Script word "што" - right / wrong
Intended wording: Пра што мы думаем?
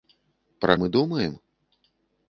wrong